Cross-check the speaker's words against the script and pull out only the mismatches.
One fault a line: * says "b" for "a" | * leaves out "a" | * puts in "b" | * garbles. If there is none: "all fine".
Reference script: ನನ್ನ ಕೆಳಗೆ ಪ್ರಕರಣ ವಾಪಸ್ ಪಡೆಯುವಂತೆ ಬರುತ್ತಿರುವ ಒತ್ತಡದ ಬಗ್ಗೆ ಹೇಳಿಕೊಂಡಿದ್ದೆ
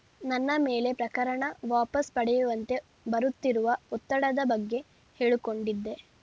* says "ಮೇಲೆ" for "ಕೆಳಗೆ"